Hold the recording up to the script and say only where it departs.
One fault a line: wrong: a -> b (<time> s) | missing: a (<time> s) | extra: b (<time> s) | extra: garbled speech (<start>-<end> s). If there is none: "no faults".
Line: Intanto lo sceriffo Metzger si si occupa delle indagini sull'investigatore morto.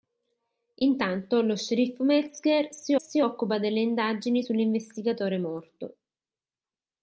no faults